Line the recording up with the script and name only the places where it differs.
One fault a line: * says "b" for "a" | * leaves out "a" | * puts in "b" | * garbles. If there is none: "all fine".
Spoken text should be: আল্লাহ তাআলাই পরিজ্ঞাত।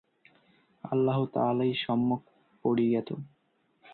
* puts in "সম্যক"